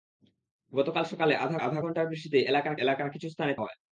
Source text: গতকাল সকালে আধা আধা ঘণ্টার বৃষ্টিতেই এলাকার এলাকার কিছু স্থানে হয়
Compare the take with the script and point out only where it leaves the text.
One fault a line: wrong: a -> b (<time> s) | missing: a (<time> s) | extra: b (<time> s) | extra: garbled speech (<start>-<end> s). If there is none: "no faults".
no faults